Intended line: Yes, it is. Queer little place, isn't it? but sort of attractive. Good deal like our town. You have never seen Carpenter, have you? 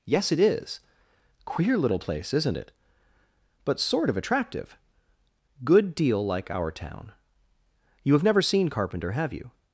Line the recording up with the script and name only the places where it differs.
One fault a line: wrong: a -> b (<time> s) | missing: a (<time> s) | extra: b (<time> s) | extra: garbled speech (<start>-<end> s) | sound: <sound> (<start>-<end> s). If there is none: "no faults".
no faults